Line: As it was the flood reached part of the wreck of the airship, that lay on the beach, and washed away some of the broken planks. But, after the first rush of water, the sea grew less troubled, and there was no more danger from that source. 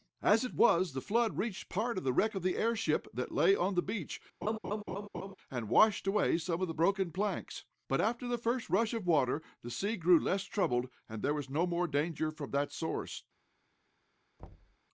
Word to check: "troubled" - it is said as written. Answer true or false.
true